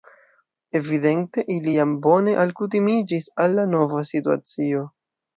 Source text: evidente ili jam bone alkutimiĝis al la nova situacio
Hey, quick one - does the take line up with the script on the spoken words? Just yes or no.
yes